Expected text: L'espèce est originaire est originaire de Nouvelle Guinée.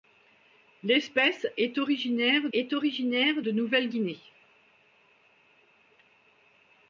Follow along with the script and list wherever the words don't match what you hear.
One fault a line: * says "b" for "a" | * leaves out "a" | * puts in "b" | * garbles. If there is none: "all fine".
all fine